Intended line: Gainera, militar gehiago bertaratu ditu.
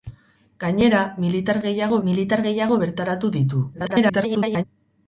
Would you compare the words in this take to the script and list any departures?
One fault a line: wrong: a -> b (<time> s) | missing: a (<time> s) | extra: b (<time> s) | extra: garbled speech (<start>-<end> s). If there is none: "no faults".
extra: militar gehiago (2.1 s)
extra: garbled speech (3.7-4.6 s)